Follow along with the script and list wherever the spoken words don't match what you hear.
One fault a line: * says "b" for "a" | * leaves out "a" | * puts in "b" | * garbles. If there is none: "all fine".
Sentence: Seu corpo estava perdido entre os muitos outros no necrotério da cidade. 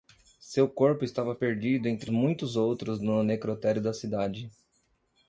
* leaves out "os"